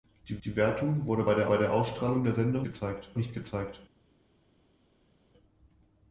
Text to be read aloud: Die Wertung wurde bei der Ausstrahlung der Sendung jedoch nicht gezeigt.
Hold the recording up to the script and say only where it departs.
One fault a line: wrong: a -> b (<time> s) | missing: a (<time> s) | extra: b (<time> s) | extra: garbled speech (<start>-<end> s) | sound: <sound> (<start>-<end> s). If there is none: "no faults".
extra: die (0.4 s)
extra: bei der (1.4 s)
wrong: jedoch -> gezeigt (2.6 s)